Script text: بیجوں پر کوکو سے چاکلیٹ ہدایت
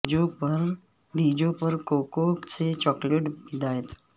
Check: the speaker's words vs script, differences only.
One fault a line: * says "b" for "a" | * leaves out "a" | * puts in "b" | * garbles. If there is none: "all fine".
all fine